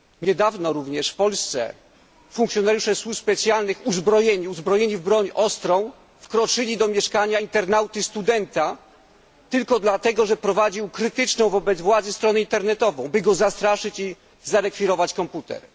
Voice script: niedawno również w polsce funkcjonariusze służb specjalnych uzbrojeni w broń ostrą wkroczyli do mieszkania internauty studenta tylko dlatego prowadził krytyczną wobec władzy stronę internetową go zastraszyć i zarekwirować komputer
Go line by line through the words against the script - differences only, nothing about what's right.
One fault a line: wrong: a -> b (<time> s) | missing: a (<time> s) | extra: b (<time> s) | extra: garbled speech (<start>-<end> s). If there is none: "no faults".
extra: że (10.2 s)
extra: by (13.1 s)